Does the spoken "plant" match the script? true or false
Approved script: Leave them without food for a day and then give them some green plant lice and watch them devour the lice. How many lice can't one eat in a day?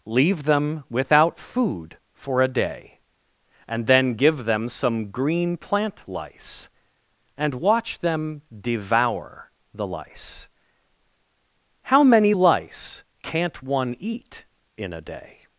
true